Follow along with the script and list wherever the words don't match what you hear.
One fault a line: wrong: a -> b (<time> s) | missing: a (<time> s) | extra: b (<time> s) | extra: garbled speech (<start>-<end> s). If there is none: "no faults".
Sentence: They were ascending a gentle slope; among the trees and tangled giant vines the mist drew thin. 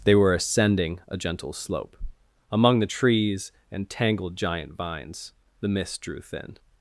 no faults